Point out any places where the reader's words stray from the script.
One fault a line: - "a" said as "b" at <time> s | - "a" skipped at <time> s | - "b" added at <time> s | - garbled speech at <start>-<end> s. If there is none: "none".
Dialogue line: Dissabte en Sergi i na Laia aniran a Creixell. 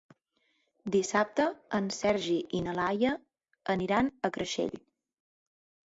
none